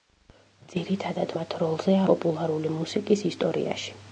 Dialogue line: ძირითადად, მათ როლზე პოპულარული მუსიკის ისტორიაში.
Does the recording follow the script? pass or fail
pass